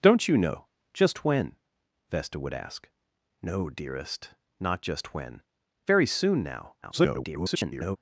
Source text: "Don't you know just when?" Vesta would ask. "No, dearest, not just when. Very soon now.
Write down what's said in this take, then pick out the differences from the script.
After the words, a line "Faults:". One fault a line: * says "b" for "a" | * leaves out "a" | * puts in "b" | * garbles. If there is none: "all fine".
"Don't you know just when?" Vesta would ask. "No, dearest, not just when. Very soon now. [garbled]
Faults:
* garbles